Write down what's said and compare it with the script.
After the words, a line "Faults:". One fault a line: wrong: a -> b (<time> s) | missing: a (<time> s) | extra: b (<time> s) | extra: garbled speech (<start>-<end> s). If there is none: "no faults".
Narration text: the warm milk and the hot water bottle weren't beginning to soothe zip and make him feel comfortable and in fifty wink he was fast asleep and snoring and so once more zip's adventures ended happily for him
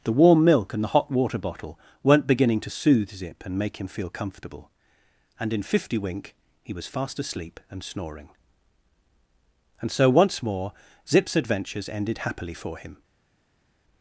the warm milk and the hot water bottle weren't beginning to soothe zip and make him feel comfortable and in fifty wink he was fast asleep and snoring and so once more zip's adventures ended happily for him
Faults:
no faults